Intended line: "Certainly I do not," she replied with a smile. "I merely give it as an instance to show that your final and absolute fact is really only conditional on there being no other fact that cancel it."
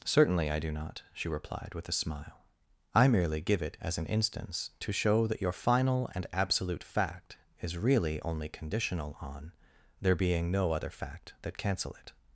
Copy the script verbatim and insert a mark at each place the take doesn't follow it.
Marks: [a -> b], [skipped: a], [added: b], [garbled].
"Certainly I do not," she replied with a smile. "I merely give it as an instance to show that your final and absolute fact is really only conditional on there being no other fact that cancel it."